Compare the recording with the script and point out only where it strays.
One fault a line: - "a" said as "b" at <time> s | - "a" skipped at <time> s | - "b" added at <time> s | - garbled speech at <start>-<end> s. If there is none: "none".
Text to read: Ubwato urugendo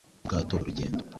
none